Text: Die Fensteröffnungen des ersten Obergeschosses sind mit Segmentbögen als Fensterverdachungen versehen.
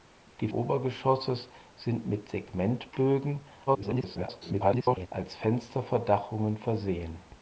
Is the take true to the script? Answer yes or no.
no